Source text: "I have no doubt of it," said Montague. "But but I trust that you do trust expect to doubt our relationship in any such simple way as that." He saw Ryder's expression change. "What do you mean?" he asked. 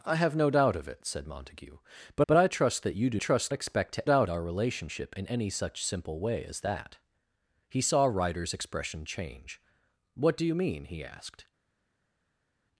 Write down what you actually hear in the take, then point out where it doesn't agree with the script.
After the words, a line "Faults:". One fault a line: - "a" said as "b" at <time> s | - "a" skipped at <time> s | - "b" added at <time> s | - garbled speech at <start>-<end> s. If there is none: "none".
"I have no doubt of it," said Montague. "But but I trust that you do trust expect to doubt our relationship in any such simple way as that." He saw Ryder's expression change. "What do you mean?" he asked.
Faults:
none